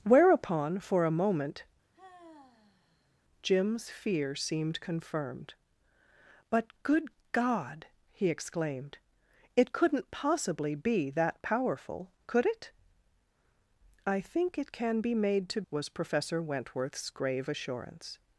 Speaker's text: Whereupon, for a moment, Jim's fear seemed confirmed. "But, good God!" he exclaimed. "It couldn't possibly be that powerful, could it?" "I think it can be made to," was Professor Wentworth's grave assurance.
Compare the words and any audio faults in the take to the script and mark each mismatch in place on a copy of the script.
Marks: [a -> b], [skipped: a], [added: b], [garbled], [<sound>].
Whereupon, for a moment, [sigh] Jim's fear seemed confirmed. "But, good God!" he exclaimed. "It couldn't possibly be that powerful, could it?" "I think it can be made to," was Professor Wentworth's grave assurance.